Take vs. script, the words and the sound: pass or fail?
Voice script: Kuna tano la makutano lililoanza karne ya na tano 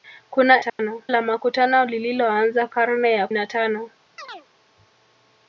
fail